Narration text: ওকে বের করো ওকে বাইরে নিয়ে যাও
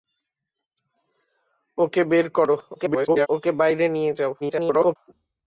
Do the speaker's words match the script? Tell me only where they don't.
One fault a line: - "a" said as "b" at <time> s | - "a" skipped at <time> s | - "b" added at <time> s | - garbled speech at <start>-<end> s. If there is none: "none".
- garbled speech at 2.8-3.3 s
- garbled speech at 4.4-5.0 s